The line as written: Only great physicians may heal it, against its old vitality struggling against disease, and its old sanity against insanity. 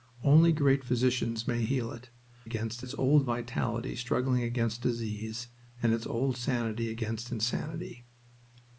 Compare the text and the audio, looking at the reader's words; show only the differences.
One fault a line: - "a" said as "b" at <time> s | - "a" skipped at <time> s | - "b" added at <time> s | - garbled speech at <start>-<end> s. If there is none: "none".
none